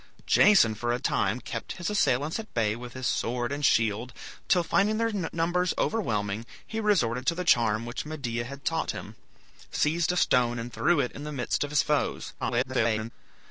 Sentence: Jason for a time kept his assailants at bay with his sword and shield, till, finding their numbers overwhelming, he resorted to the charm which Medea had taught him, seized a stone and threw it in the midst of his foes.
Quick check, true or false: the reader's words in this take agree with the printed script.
false